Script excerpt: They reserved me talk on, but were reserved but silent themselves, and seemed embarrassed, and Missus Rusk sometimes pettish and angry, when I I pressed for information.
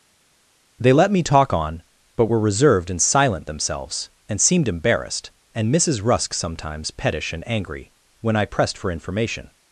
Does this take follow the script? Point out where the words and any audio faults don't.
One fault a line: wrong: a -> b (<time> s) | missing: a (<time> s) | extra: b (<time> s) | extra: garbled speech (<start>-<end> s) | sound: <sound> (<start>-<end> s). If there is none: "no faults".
wrong: reserved -> let (0.9 s)
wrong: but -> and (2.9 s)
missing: I (8.5 s)